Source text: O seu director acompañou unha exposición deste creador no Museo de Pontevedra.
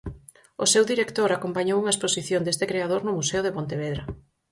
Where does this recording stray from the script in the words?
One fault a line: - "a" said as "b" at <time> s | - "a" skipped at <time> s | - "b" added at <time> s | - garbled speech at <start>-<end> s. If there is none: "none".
none